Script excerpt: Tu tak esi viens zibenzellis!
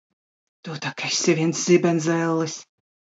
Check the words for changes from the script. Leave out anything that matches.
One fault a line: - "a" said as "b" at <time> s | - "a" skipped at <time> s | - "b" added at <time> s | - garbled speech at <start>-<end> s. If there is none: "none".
none